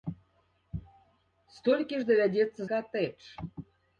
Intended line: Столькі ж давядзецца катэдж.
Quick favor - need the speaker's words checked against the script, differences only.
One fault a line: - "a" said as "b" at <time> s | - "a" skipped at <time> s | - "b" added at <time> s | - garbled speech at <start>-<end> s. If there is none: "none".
none